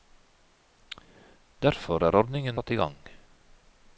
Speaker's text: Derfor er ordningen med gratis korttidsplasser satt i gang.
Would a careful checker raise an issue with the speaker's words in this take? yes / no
yes